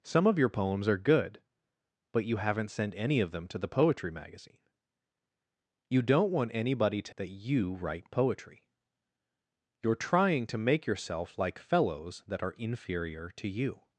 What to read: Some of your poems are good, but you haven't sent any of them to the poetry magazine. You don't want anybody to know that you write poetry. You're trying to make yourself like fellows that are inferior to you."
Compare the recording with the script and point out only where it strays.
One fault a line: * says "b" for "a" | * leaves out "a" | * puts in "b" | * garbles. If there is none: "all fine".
* leaves out "know"